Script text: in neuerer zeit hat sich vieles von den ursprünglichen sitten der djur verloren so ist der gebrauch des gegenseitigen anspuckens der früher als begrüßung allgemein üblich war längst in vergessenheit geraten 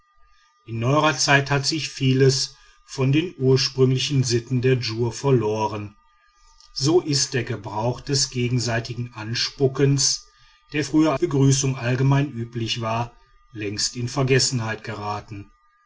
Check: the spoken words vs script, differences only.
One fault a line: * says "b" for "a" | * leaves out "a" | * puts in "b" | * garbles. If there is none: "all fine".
* leaves out "als"